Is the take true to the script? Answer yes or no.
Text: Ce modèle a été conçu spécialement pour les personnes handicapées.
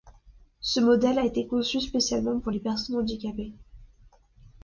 yes